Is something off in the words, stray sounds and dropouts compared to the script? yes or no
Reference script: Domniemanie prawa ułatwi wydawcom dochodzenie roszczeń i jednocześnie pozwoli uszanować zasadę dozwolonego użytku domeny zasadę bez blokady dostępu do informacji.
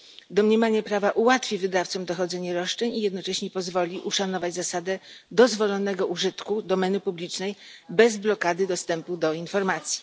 yes